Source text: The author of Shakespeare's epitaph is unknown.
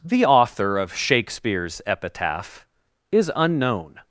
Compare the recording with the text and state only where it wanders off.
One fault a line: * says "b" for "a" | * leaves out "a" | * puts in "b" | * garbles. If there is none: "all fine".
all fine